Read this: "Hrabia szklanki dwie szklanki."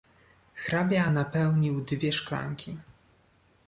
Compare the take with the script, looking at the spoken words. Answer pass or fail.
fail